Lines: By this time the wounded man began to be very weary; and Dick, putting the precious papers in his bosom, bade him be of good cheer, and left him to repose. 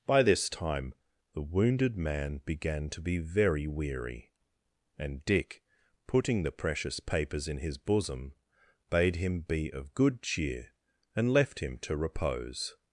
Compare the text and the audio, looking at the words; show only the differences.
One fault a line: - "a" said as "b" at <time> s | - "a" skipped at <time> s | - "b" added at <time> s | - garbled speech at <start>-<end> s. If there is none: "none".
none